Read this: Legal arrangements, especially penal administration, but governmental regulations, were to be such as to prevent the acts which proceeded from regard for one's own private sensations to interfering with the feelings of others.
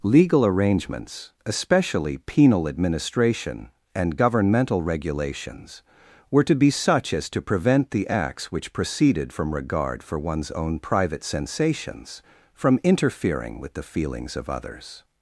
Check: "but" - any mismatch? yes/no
yes